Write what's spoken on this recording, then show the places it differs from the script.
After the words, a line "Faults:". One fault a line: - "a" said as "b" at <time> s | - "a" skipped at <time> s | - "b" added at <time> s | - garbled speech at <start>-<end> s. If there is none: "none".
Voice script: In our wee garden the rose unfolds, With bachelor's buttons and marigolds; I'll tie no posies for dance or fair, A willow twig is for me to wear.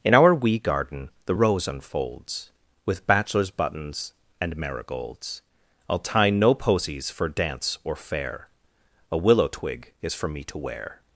In our wee garden the rose unfolds, With bachelor's buttons and marigolds; I'll tie no posies for dance or fair, A willow twig is for me to wear.
Faults:
none